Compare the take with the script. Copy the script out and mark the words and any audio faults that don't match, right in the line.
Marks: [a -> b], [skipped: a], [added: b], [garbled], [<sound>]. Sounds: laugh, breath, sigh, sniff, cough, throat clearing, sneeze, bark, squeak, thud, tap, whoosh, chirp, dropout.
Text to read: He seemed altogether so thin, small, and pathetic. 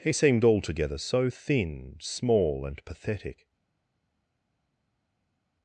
He seemed altogether so thin, small, and pathetic.